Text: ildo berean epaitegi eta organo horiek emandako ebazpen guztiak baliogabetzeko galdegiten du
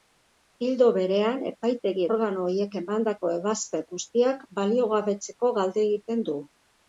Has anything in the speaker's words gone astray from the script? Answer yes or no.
yes